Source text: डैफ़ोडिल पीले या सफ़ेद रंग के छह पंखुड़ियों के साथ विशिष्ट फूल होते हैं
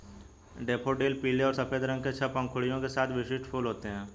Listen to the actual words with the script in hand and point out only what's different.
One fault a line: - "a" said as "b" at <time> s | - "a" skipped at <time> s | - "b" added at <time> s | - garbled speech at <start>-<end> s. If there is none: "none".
- "या" said as "और" at 1.4 s